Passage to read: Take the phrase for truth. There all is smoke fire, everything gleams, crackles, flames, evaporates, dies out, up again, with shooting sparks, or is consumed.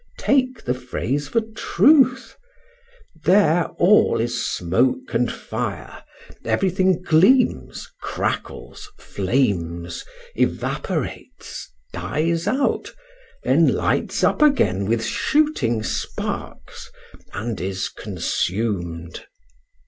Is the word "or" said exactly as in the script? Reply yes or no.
no